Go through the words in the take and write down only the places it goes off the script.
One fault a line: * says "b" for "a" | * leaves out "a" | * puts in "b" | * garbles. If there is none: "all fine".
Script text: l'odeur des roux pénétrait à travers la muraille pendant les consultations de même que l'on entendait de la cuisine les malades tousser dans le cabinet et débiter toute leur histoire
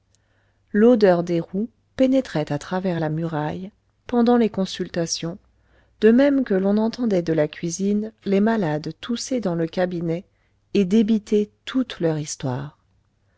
all fine